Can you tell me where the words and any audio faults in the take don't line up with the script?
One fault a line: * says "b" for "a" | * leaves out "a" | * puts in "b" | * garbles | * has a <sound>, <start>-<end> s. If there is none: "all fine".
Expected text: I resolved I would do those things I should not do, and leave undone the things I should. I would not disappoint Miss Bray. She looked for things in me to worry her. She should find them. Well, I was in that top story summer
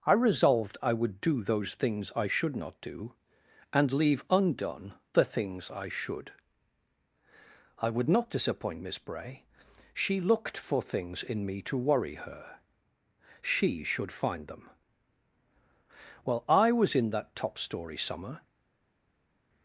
all fine